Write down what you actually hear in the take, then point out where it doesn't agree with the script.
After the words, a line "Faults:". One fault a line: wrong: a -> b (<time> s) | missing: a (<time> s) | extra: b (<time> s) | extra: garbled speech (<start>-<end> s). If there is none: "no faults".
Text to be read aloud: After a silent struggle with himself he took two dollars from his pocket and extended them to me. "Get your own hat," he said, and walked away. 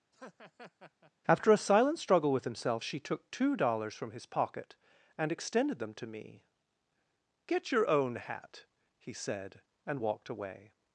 After a silent struggle with himself she took two dollars from his pocket and extended them to me. "Get your own hat," he said, and walked away.
Faults:
wrong: he -> she (2.8 s)